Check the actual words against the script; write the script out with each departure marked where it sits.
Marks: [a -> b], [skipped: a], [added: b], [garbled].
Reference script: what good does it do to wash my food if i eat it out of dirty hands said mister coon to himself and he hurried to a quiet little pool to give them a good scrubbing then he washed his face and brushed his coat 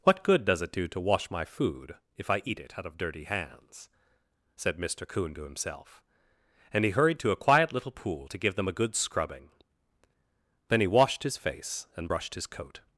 what good does it do to wash my food if i eat it out of dirty hands said mister coon to himself and he hurried to a quiet little pool to give them a good scrubbing then he washed his face and brushed his coat